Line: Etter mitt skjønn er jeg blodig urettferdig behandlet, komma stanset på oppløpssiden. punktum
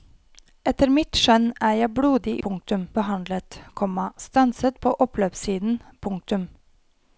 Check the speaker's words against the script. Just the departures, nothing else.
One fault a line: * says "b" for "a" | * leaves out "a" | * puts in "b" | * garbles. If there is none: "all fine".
* says "punktum" for "urettferdig"